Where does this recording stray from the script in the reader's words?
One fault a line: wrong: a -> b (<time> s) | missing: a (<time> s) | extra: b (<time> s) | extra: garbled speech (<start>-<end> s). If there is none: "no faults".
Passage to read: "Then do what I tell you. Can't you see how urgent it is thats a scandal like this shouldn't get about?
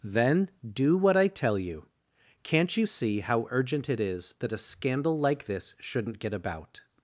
wrong: thats -> that (4.4 s)